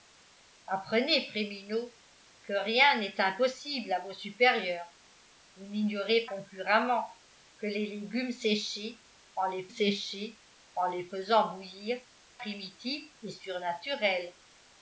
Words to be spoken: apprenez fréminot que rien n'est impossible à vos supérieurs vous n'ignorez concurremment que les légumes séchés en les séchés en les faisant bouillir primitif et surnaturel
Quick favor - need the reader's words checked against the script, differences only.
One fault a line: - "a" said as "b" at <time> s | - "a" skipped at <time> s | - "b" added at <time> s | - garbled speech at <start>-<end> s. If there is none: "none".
none